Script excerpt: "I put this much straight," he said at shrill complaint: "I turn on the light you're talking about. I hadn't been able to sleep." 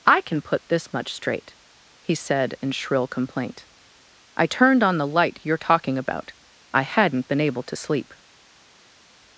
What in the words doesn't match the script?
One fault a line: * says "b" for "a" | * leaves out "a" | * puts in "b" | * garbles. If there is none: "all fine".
* puts in "can"
* says "in" for "at"
* says "turned" for "turn"